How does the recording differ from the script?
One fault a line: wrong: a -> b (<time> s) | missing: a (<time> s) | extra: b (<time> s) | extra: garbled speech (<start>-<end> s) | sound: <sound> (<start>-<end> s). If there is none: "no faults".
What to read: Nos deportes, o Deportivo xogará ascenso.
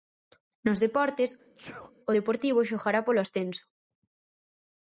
sound: sneeze (1.4-1.9 s)
extra: polo (3.0 s)